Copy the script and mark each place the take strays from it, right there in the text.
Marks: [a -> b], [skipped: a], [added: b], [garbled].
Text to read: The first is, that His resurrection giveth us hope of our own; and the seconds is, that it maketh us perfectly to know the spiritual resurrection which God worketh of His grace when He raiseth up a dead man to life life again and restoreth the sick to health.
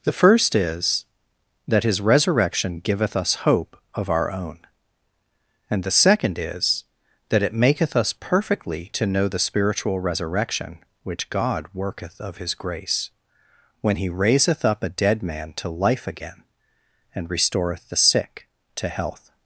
The first is, that His resurrection giveth us hope of our own; and the [seconds -> second] is, that it maketh us perfectly to know the spiritual resurrection which God worketh of His grace when He raiseth up a dead man to life [skipped: life] again and restoreth the sick to health.